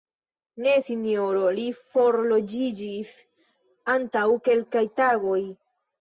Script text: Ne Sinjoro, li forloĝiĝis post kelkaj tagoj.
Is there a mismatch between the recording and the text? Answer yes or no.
yes